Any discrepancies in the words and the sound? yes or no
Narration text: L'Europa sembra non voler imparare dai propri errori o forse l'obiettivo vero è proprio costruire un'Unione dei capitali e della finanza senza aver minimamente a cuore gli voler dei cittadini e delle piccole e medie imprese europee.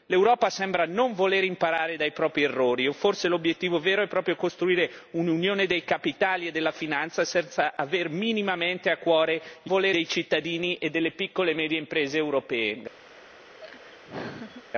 yes